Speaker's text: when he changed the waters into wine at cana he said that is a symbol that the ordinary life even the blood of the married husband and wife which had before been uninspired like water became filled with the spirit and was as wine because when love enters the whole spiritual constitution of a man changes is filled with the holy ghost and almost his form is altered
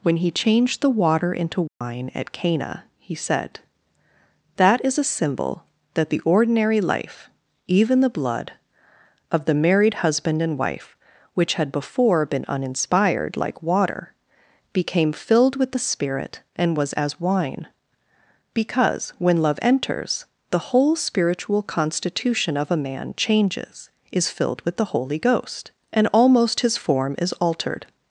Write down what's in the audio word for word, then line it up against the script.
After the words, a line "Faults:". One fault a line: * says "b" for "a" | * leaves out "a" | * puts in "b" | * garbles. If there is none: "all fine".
when he changed the water into wine at cana he said that is a symbol that the ordinary life even the blood of the married husband and wife which had before been uninspired like water became filled with the spirit and was as wine because when love enters the whole spiritual constitution of a man changes is filled with the holy ghost and almost his form is altered
Faults:
* says "water" for "waters"